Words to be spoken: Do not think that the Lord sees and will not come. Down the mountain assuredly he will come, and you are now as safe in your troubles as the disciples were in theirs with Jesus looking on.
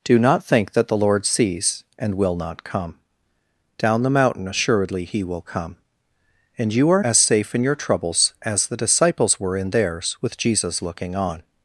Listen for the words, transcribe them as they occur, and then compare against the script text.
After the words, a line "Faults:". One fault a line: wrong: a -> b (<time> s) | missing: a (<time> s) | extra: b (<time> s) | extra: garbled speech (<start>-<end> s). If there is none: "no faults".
Do not think that the Lord sees and will not come. Down the mountain assuredly he will come, and you are as safe in your troubles as the disciples were in theirs with Jesus looking on.
Faults:
missing: now (7.0 s)